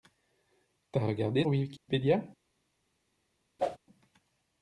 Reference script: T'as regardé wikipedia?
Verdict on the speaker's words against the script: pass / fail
pass